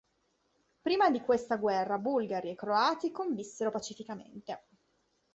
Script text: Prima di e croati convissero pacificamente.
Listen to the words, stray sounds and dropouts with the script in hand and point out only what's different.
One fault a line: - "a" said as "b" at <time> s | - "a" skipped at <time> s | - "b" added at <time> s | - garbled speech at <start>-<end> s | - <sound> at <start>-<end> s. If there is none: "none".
- "questa guerra bulgari" added at 1.2 s